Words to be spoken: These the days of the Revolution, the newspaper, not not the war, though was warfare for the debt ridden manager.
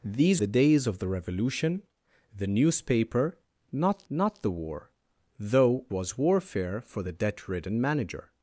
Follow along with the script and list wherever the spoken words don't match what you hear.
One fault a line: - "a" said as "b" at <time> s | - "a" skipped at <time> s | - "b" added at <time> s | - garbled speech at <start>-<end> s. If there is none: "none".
none